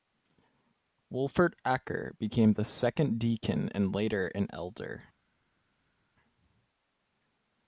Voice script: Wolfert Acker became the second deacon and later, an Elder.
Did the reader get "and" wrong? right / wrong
right